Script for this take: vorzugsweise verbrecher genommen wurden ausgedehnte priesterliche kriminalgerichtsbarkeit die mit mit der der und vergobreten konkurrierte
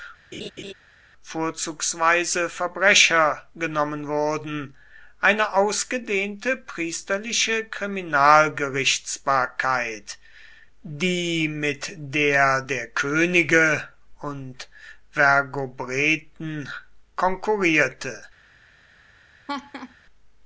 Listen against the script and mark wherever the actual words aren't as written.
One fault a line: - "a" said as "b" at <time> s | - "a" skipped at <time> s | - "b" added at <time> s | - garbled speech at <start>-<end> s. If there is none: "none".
- "eine" added at 5.2 s
- "mit" said as "der" at 12.0 s
- "der" said as "könige" at 12.9 s